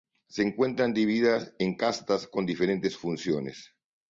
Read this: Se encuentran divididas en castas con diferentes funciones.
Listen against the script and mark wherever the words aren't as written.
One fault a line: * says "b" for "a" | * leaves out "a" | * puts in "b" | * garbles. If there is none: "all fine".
all fine